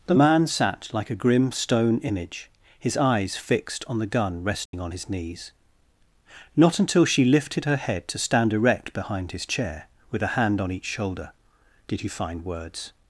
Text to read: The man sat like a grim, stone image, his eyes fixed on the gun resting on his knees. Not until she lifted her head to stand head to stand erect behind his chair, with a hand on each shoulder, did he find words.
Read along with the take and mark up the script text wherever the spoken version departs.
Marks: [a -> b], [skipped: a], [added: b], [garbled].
The man sat like a grim, stone image, his eyes fixed on the gun resting on his knees. Not until she lifted her head to stand [skipped: head to stand] erect behind his chair, with a hand on each shoulder, did he find words.